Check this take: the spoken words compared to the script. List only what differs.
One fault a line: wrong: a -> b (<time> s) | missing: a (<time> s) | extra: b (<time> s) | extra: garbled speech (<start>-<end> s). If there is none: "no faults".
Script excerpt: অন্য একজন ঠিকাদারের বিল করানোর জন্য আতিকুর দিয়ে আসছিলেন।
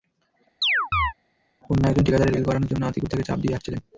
extra: তাঁকে চাপ (3.1 s)